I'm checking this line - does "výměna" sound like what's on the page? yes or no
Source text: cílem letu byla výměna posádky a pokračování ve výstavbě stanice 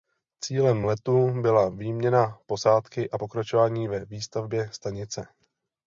yes